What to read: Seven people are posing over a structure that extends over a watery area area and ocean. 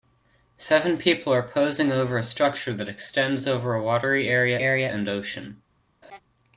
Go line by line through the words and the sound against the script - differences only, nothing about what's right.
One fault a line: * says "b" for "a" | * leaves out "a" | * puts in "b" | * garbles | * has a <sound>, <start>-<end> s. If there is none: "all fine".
* has a laugh, 6.0-6.2 s